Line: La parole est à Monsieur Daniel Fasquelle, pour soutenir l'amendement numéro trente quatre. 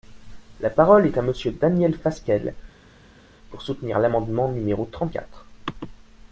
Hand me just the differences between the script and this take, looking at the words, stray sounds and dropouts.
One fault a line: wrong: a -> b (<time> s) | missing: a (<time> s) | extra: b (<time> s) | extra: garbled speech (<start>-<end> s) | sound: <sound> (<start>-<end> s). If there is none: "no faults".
no faults